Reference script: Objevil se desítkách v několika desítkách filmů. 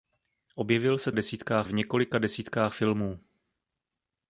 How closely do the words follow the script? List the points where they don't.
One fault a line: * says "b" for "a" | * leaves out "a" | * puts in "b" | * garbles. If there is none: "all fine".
all fine